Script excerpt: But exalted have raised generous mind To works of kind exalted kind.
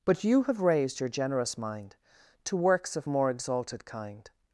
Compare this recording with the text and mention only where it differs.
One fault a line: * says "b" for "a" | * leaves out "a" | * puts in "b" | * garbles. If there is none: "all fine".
* says "you" for "exalted"
* puts in "your"
* says "more" for "kind"